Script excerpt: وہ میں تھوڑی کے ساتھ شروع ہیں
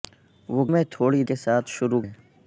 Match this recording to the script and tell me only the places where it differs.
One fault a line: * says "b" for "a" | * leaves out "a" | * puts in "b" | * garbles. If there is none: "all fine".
all fine